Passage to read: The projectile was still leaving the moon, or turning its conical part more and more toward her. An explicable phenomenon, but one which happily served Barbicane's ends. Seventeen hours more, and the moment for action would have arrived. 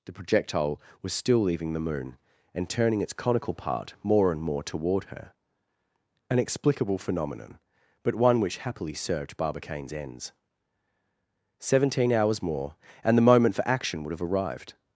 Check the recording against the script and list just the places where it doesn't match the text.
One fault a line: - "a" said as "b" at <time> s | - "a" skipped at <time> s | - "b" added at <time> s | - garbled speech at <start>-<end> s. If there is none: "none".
- "or" said as "and" at 2.5 s